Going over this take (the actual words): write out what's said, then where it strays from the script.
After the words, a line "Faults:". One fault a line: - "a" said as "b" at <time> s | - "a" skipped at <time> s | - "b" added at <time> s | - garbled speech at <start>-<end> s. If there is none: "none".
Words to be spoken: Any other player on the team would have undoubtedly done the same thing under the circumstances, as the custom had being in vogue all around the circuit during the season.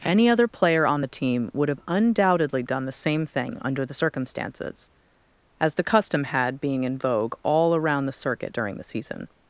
Any other player on the team would have undoubtedly done the same thing under the circumstances, as the custom had being in vogue all around the circuit during the season.
Faults:
none